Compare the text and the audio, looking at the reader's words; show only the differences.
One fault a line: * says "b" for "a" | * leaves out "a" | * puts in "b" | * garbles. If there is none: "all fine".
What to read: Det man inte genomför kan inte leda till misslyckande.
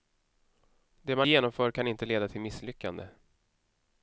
* leaves out "inte"